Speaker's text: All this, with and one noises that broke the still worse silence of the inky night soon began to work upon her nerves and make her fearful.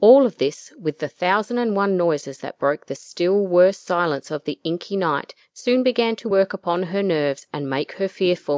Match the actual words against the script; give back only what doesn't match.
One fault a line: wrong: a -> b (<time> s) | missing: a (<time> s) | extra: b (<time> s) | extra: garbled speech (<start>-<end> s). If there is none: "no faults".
extra: of (0.2 s)
extra: the thousand (1.0 s)